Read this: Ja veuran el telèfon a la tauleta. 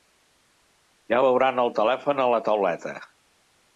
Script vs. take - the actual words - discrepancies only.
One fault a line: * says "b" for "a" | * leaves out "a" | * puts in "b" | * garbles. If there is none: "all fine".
all fine